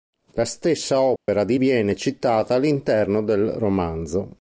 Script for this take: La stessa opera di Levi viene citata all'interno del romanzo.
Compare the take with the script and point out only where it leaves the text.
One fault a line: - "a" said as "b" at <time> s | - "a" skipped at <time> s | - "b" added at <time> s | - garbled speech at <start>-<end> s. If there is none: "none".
- "Levi" skipped at 1.6 s